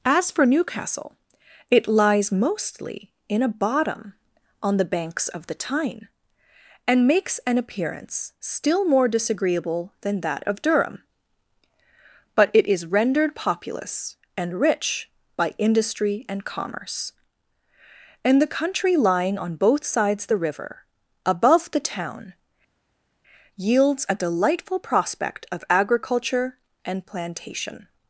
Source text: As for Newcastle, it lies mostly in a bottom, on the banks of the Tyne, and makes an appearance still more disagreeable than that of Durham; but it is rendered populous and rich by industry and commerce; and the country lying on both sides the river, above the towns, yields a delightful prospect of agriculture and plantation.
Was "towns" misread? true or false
true